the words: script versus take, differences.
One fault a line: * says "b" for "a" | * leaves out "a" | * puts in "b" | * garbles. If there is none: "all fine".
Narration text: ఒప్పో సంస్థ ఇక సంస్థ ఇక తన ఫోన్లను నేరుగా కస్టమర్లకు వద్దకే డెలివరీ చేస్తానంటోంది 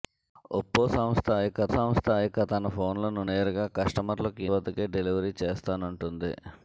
all fine